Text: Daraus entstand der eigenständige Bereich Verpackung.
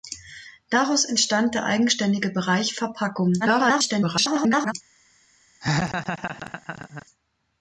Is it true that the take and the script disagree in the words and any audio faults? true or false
true